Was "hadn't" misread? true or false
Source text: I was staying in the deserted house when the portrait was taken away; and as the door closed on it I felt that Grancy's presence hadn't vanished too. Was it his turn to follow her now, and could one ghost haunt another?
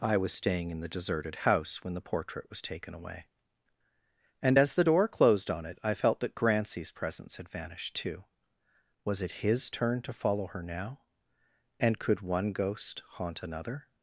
true